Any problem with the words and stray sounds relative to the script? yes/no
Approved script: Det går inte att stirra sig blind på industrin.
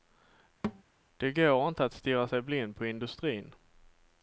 yes